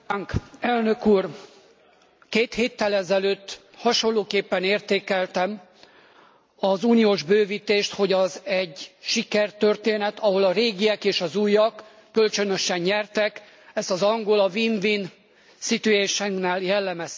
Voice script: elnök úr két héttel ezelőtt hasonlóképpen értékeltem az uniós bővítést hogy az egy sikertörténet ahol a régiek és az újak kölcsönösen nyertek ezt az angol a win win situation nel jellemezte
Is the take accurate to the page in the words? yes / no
yes